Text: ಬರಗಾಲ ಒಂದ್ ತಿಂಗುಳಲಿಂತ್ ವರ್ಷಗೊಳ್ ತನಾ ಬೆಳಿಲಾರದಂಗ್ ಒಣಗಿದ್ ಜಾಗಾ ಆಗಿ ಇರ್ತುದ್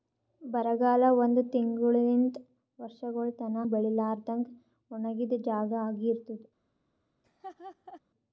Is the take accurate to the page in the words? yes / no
yes